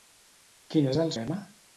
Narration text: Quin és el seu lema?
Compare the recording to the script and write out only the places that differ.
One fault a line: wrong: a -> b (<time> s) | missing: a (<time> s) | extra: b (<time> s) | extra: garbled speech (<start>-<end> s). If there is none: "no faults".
missing: seu (1.1 s)